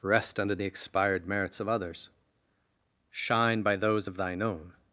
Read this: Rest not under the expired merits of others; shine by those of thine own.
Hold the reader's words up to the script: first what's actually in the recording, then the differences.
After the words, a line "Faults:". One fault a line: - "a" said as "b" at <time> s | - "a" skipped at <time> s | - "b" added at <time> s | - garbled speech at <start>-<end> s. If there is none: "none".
Rest under the expired merits of others; shine by those of thine own.
Faults:
- "not" skipped at 0.4 s